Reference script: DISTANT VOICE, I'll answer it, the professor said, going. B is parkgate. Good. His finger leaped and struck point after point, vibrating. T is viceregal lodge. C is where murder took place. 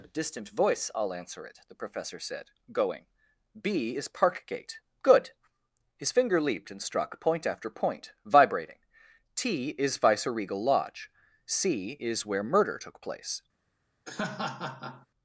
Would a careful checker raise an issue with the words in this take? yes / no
no